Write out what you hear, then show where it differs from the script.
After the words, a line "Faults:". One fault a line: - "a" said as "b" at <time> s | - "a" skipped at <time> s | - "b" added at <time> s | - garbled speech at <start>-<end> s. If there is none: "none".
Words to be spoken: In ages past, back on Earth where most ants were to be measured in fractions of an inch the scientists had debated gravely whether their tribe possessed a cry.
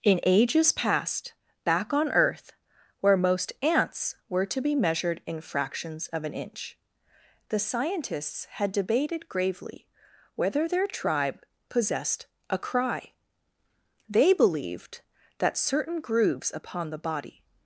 In ages past, back on Earth where most ants were to be measured in fractions of an inch the scientists had debated gravely whether their tribe possessed a cry. They believed that certain grooves upon the body
Faults:
- "They believed that certain grooves upon the body" added at 14.1 s